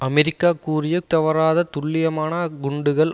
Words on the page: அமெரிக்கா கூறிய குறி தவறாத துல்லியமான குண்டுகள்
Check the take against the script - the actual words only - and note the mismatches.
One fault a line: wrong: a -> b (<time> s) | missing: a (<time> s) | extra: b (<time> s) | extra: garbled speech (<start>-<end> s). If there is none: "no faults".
missing: குறி (0.9 s)